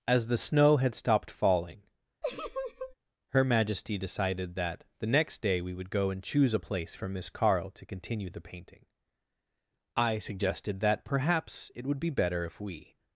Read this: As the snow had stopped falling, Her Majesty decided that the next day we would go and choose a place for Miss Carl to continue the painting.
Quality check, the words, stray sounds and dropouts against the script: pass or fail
fail